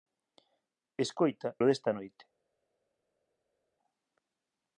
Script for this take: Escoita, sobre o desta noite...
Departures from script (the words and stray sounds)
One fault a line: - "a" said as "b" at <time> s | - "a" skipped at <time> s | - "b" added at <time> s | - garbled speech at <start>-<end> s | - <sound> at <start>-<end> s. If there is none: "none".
- "sobre" skipped at 1.5 s